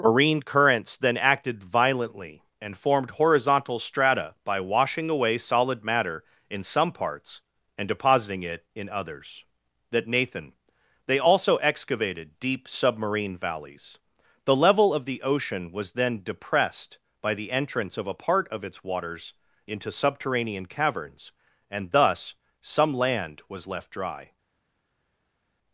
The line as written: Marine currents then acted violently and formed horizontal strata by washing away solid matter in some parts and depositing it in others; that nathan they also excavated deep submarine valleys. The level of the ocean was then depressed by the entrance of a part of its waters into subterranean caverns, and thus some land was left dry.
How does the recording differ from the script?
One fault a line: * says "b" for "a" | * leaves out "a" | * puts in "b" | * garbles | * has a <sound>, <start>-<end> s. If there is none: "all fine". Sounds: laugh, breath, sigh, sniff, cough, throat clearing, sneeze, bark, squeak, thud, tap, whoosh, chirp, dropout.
all fine